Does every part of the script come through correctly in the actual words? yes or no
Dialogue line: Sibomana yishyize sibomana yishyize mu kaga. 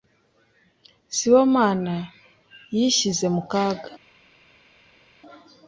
no